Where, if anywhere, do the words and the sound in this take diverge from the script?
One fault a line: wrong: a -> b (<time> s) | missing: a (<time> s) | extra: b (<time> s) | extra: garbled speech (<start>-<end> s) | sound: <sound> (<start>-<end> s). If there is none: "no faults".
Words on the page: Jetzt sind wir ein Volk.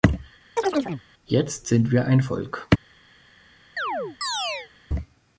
sound: chirp (0.6-1.0 s)
sound: chirp (3.8-4.7 s)